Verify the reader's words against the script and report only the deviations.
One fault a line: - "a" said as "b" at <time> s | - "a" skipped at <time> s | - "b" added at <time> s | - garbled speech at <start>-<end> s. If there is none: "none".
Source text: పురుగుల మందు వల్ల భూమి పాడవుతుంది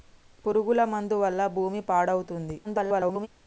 - garbled speech at 2.6-3.3 s